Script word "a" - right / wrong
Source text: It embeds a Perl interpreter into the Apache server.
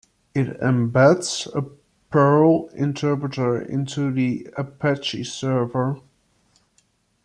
right